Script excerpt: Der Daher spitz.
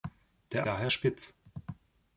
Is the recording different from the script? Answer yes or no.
no